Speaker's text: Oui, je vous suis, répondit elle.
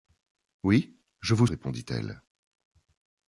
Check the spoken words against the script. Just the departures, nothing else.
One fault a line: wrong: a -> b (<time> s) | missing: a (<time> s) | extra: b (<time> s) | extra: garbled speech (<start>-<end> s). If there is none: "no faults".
missing: suis (1.4 s)